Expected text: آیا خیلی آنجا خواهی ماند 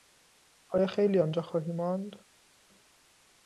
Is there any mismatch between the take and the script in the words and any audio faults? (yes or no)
no